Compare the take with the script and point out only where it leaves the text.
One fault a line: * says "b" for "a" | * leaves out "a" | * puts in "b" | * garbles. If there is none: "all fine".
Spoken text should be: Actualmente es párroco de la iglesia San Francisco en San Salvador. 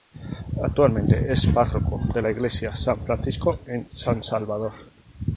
all fine